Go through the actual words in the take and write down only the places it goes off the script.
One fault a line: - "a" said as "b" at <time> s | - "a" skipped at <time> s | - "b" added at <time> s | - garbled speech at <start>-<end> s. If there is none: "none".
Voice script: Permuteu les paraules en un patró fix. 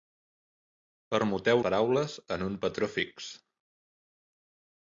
- "les" skipped at 1.6 s